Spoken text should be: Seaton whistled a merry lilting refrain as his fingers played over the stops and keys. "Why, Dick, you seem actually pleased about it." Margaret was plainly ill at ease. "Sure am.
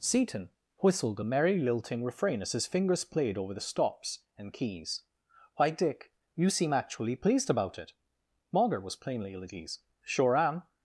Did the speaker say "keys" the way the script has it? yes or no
yes